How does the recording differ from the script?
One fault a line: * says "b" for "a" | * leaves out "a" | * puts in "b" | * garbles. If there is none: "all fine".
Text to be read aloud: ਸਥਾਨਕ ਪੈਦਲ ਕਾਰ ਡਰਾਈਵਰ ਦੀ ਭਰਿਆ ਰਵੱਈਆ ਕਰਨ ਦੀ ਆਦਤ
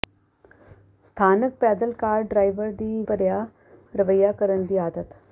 all fine